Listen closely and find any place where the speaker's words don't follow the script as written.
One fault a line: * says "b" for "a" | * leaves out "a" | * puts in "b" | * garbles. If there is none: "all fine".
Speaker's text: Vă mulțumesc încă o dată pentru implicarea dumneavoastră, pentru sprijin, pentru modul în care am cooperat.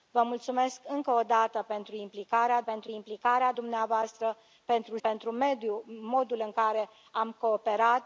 * puts in "pentru implicarea"
* leaves out "sprijin"